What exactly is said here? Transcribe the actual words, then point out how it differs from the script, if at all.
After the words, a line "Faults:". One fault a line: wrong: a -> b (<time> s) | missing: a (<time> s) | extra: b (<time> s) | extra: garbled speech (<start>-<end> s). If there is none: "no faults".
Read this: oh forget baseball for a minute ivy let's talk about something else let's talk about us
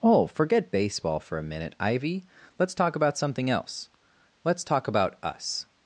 oh forget baseball for a minute ivy let's talk about something else let's talk about us
Faults:
no faults